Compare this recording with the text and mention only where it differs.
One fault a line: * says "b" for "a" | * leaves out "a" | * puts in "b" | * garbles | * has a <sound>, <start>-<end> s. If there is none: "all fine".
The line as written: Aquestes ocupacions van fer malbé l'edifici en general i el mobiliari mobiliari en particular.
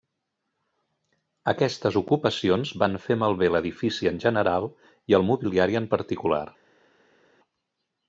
* leaves out "mobiliari"